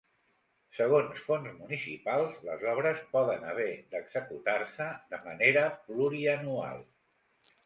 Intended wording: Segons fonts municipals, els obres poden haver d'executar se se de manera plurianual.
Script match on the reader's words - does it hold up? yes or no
no